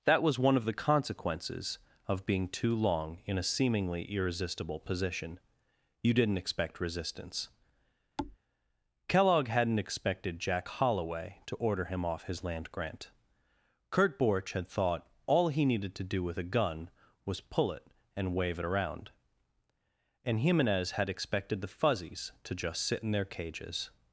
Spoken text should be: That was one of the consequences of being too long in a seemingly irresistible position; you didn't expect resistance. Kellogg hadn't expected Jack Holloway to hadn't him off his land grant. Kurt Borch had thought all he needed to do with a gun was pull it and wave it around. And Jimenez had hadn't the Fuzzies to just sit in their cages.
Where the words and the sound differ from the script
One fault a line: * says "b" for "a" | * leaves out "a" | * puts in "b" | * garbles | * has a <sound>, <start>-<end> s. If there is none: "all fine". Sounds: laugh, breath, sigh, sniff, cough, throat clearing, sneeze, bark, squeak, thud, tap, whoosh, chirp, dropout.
* has a thud, 8.2-8.4 s
* says "order" for "hadn't"
* says "expected" for "hadn't"